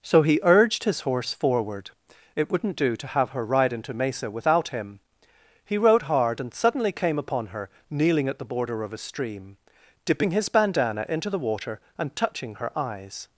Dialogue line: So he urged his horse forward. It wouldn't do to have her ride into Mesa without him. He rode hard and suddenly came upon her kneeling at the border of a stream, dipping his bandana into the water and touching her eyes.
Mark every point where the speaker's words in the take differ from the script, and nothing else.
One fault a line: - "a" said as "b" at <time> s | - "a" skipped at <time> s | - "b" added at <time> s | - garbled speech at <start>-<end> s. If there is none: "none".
none